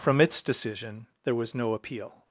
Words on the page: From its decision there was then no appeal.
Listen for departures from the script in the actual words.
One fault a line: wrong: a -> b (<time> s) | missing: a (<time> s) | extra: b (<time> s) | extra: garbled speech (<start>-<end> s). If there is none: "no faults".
missing: then (1.6 s)